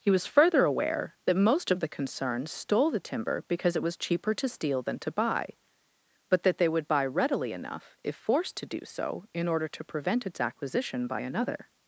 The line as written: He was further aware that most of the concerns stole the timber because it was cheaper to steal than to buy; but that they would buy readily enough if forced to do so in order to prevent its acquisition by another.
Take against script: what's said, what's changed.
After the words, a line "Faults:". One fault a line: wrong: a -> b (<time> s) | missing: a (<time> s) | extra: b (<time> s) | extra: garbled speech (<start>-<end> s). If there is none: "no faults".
He was further aware that most of the concerns stole the timber because it was cheaper to steal than to buy; but that they would buy readily enough if forced to do so in order to prevent its acquisition by another.
Faults:
no faults